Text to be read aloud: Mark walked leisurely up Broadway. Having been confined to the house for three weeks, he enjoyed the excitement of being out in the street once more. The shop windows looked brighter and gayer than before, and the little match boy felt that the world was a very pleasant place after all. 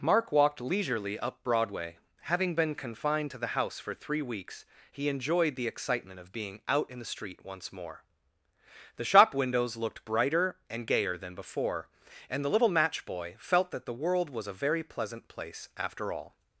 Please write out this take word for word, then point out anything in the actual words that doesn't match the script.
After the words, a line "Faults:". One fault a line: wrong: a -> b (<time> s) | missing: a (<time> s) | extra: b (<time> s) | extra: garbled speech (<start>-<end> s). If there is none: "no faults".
Mark walked leisurely up Broadway. Having been confined to the house for three weeks, he enjoyed the excitement of being out in the street once more. The shop windows looked brighter and gayer than before, and the little match boy felt that the world was a very pleasant place after all.
Faults:
no faults